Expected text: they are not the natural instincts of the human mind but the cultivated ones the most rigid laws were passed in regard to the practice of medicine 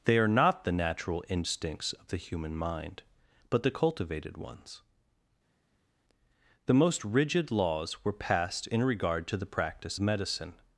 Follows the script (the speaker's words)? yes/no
no